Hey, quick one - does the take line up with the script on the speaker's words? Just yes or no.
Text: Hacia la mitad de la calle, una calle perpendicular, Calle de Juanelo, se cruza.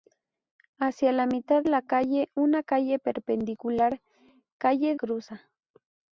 no